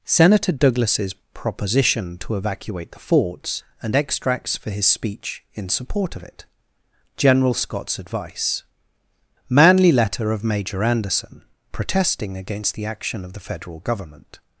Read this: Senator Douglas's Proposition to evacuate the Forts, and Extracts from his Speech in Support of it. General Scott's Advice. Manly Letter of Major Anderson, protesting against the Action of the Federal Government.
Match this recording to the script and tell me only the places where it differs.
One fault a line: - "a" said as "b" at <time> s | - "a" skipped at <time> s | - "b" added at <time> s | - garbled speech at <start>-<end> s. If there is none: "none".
- "from" said as "for" at 4.6 s